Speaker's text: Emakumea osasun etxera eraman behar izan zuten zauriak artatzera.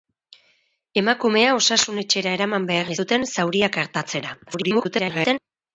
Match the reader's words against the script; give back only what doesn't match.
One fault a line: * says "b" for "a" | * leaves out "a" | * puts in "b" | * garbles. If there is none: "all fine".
* leaves out "izan"
* garbles